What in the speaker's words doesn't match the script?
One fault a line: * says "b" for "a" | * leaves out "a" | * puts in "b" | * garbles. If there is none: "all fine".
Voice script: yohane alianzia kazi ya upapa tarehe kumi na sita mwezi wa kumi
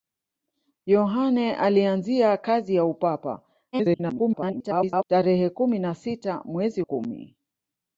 * garbles
* leaves out "wa"